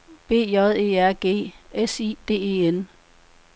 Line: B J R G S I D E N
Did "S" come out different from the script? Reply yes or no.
no